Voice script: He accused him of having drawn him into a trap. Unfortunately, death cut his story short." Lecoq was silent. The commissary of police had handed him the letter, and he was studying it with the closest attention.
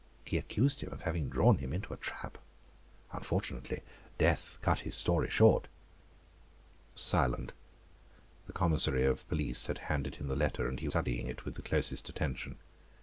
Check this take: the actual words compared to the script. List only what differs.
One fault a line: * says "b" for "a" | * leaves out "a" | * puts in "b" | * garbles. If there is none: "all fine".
* leaves out "Lecoq"
* leaves out "was"